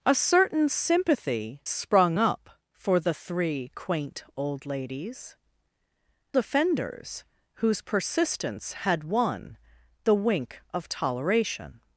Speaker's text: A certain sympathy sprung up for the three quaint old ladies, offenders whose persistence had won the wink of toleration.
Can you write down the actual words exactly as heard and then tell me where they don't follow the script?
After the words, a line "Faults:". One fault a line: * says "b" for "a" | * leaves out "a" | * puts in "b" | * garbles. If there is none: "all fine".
A certain sympathy sprung up for the three quaint old ladies, offenders whose persistence had won the wink of toleration.
Faults:
all fine